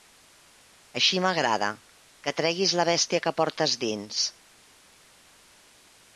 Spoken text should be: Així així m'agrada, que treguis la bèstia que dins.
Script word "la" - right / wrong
right